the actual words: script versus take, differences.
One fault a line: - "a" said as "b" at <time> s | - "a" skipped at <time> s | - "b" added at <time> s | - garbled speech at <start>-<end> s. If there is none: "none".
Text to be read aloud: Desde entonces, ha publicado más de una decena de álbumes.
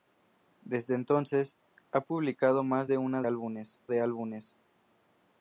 - "decena" said as "álbumes" at 3.2 s